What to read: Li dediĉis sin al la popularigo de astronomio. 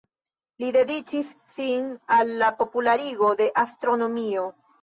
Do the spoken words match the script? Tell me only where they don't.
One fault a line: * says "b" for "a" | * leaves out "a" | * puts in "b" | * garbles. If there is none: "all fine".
all fine